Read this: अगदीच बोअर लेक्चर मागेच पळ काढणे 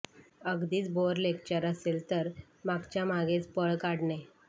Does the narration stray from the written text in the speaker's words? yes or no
yes